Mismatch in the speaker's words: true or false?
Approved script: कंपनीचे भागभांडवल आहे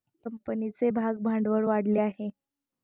true